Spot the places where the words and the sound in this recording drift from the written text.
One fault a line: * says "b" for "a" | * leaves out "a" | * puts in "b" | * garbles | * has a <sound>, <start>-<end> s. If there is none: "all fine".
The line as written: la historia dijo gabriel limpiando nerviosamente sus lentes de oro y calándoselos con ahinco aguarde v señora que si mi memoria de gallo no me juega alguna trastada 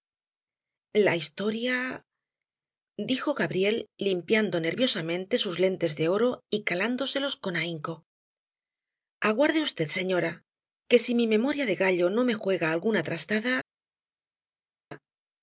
all fine